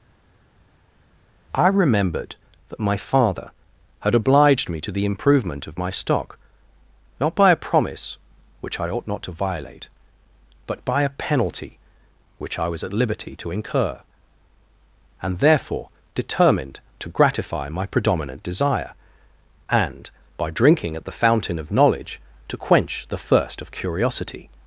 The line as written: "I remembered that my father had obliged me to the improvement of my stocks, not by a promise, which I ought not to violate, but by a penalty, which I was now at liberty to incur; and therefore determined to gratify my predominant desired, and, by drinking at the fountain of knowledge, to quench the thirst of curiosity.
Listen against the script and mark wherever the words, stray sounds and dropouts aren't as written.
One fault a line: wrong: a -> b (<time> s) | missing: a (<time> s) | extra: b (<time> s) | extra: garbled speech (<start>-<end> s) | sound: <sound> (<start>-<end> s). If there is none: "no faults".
wrong: stocks -> stock (5.9 s)
missing: now (12.8 s)
wrong: desired -> desire (18.4 s)